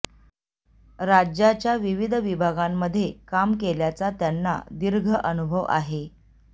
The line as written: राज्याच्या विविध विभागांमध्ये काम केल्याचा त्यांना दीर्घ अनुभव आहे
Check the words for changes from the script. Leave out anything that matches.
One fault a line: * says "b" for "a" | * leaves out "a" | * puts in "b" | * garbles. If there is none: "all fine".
all fine